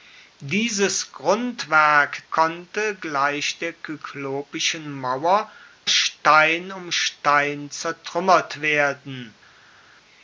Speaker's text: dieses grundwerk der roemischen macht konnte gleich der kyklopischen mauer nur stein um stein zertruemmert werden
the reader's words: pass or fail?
fail